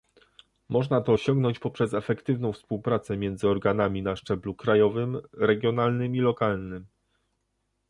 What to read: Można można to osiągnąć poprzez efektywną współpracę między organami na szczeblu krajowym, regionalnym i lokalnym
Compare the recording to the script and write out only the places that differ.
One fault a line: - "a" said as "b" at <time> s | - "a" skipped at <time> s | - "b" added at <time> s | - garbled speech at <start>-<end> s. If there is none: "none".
- "można" skipped at 1.0 s